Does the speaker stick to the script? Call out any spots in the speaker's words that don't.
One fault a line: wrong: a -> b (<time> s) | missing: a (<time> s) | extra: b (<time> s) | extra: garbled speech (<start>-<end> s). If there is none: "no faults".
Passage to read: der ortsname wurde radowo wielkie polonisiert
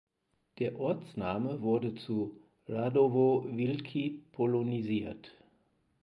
extra: zu (1.9 s)